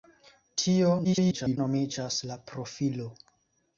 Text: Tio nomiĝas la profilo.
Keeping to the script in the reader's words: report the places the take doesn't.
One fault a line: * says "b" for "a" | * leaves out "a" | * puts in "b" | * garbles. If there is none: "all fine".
* garbles